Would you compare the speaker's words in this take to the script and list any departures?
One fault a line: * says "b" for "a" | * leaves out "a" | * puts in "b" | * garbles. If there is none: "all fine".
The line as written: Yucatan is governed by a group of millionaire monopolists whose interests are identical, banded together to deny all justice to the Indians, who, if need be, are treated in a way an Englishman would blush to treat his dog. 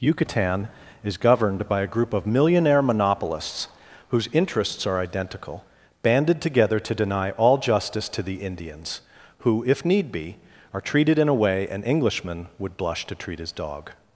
all fine